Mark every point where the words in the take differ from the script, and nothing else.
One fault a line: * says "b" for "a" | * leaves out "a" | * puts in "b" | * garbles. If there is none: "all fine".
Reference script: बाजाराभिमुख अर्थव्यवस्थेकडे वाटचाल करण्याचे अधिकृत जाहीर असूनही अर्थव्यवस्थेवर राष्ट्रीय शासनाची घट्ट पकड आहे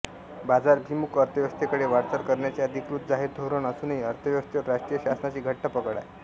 * puts in "धोरण"